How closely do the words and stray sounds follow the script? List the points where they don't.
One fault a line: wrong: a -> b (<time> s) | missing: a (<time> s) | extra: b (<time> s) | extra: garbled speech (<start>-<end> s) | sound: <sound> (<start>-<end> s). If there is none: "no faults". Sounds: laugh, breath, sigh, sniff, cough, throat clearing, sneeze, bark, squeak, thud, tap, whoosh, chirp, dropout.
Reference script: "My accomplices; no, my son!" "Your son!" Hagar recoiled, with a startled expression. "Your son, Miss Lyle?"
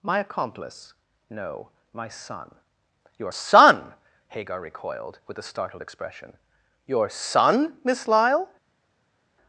wrong: accomplices -> accomplice (0.2 s)